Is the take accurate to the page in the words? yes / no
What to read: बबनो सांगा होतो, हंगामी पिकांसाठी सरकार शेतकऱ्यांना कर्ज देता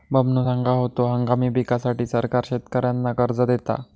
yes